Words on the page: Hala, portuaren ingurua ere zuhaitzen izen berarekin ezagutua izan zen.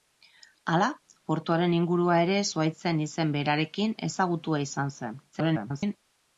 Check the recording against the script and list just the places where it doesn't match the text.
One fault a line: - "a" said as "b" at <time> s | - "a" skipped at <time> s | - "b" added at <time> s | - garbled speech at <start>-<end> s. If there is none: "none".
- garbled speech at 5.3-6.0 s